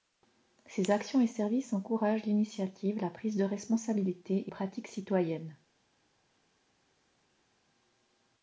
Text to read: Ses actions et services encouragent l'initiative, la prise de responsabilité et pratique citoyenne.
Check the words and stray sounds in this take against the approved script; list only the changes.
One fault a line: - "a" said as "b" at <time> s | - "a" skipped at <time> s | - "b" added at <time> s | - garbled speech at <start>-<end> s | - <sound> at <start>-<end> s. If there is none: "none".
none